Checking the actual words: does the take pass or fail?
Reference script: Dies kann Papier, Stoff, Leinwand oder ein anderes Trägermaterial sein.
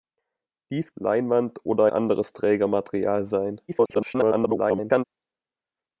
fail